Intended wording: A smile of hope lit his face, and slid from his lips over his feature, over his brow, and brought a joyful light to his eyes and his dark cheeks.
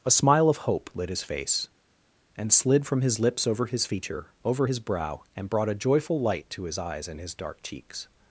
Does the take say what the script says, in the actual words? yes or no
yes